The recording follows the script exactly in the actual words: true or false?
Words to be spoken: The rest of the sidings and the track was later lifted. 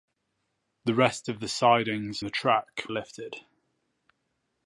false